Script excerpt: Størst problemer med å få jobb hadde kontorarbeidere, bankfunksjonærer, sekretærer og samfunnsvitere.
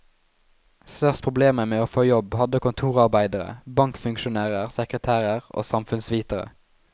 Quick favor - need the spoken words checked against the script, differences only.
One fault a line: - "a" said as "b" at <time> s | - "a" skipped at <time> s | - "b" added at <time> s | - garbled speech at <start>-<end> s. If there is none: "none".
none